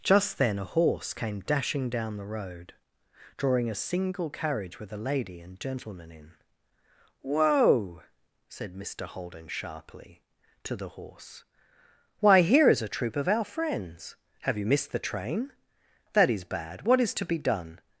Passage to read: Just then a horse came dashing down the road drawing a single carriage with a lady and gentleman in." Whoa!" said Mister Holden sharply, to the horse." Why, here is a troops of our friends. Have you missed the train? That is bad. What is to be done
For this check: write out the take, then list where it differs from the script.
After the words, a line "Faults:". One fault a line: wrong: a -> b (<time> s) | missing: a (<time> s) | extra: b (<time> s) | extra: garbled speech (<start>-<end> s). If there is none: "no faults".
Just then a horse came dashing down the road drawing a single carriage with a lady and gentleman in." Whoa!" said Mister Holden sharply, to the horse." Why, here is a troop of our friends. Have you missed the train? That is bad. What is to be done
Faults:
wrong: troops -> troop (12.9 s)